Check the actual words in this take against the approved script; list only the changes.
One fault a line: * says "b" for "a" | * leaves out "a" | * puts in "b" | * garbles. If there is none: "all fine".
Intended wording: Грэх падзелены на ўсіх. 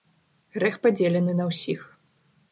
all fine